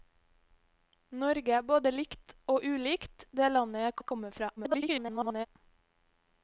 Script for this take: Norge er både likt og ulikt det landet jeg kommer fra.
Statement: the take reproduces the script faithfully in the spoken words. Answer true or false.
false